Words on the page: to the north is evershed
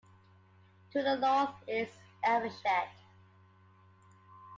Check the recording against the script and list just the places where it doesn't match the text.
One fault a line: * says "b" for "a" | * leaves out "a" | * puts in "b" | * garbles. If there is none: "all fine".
all fine